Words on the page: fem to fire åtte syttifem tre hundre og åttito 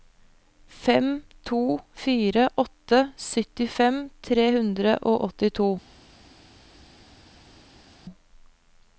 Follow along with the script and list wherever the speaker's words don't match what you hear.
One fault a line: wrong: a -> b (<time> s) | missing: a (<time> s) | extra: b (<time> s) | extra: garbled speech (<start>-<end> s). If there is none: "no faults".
no faults